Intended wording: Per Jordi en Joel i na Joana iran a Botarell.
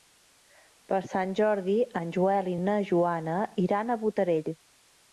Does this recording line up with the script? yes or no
no